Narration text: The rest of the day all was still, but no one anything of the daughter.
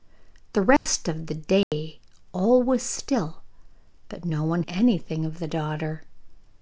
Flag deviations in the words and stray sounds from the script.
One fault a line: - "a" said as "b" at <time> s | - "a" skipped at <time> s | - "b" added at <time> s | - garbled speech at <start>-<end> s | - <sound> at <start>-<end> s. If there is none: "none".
- dropout at 0.8-0.9 s
- dropout at 1.6-1.7 s